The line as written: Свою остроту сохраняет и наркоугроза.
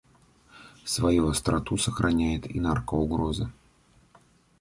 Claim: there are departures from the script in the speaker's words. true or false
false